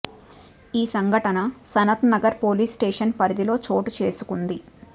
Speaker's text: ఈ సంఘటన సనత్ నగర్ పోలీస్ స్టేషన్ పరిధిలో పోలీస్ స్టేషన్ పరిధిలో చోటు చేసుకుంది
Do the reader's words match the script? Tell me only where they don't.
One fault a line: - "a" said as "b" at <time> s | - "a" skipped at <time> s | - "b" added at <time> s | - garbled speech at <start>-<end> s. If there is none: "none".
- "పోలీస్ స్టేషన్ పరిధిలో" skipped at 3.6 s